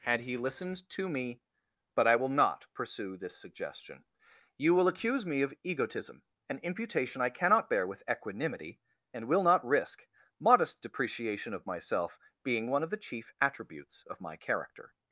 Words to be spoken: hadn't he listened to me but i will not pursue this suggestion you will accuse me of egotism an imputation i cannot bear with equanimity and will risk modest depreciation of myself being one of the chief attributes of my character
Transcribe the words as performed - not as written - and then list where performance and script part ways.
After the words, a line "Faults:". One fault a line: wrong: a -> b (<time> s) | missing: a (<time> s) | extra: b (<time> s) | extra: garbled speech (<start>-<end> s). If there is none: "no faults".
had he listened to me but i will not pursue this suggestion you will accuse me of egotism an imputation i cannot bear with equanimity and will not risk modest depreciation of myself being one of the chief attributes of my character
Faults:
wrong: hadn't -> had (0.0 s)
extra: not (9.4 s)